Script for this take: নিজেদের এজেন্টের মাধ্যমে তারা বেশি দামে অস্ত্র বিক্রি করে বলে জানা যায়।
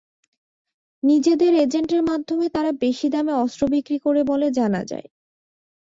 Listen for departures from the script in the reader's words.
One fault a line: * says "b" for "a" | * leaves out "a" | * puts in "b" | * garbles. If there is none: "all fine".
all fine